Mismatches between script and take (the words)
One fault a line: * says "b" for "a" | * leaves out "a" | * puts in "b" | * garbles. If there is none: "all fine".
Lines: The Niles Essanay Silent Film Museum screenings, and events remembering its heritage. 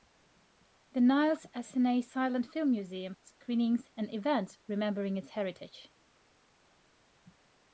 all fine